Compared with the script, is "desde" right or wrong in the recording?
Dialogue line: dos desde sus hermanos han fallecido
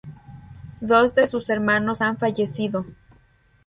wrong